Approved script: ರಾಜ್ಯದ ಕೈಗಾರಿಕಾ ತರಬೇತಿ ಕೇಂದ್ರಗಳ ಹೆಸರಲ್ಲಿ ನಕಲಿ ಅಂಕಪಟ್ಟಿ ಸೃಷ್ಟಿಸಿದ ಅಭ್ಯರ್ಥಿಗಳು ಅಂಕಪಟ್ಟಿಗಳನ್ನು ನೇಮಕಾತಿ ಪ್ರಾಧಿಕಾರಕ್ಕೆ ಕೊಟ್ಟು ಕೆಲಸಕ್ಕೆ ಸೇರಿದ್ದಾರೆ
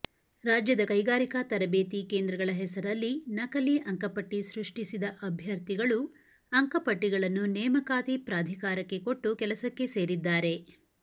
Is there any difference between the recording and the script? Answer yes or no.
no